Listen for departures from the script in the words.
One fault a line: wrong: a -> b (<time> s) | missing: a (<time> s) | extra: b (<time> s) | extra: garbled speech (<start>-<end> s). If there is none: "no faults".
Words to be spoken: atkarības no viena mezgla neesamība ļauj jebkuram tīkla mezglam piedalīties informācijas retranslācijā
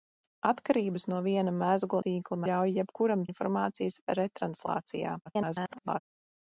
wrong: neesamība -> tīkla (2.1 s)
missing: tīkla mezglam piedalīties (3.3 s)
extra: garbled speech (5.3-6.0 s)